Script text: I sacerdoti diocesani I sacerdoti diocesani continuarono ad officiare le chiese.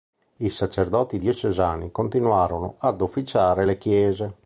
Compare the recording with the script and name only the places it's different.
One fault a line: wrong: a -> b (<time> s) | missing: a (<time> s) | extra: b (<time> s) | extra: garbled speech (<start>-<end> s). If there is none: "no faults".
missing: I sacerdoti diocesani (1.9 s)